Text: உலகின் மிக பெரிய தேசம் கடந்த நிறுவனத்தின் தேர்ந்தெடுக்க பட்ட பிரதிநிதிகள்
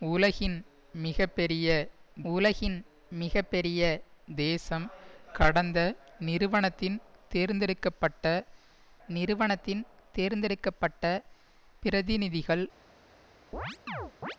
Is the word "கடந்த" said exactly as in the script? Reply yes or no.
yes